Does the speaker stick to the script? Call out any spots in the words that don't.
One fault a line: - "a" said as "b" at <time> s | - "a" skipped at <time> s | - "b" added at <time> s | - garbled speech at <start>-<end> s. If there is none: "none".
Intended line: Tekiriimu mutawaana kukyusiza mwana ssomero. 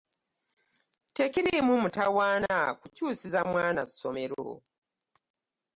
none